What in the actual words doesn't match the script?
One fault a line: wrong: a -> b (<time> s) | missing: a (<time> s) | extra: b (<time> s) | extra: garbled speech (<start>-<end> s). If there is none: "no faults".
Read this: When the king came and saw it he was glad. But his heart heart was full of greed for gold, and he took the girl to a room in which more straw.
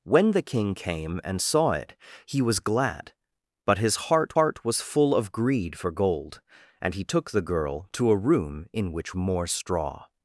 no faults